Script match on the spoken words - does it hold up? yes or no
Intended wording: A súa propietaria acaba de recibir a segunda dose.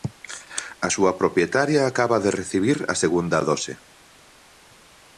yes